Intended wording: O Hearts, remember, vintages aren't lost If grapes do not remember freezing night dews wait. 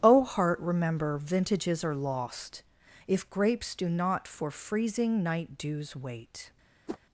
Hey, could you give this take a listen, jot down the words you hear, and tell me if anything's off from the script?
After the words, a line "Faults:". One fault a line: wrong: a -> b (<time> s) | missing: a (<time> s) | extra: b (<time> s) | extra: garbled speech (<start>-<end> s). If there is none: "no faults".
O Heart, remember, vintages are lost If grapes do not for freezing night dews wait.
Faults:
wrong: Hearts -> Heart (0.2 s)
wrong: aren't -> are (1.8 s)
wrong: remember -> for (4.3 s)